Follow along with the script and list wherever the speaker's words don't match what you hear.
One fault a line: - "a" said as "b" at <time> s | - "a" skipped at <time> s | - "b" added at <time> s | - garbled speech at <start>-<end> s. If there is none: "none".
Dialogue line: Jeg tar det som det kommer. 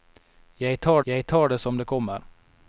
- "jeg tar" added at 1.0 s